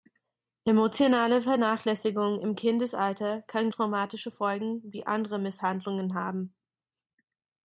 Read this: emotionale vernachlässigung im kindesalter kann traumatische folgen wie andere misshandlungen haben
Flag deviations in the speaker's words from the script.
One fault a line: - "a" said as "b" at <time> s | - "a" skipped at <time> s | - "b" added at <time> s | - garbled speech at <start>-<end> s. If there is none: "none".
none